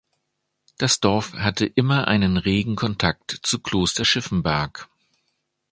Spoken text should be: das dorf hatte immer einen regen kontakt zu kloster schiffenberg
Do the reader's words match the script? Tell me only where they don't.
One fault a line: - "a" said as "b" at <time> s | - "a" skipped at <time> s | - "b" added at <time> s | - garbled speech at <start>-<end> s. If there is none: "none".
none